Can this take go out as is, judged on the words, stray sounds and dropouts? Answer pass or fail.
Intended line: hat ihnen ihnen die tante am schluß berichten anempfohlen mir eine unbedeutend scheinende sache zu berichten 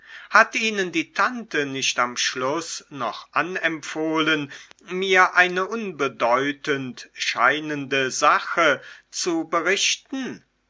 fail